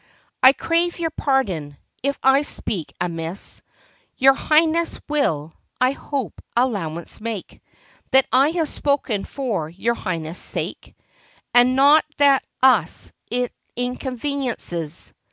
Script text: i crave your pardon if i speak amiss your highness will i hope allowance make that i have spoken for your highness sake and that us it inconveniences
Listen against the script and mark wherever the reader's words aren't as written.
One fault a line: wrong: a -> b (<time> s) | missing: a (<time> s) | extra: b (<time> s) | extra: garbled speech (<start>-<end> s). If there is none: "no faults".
extra: not (11.7 s)